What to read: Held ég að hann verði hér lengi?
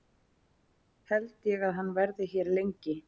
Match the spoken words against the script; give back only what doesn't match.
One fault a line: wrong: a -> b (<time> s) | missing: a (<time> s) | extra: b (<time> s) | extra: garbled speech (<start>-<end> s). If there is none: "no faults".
no faults